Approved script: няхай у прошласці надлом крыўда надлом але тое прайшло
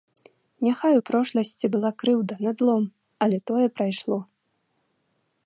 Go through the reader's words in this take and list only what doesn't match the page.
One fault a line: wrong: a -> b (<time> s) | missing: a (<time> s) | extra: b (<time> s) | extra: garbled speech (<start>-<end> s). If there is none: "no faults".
wrong: надлом -> была (1.8 s)